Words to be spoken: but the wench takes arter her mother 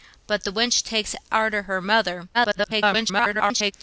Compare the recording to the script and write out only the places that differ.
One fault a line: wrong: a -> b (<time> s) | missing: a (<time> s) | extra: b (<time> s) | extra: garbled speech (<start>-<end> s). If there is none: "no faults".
extra: garbled speech (2.3-3.7 s)